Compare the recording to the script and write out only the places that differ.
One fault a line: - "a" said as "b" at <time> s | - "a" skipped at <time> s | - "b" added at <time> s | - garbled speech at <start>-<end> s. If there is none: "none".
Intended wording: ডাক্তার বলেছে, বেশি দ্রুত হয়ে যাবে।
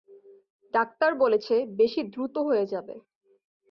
none